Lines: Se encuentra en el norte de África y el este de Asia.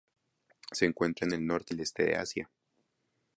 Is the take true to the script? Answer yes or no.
no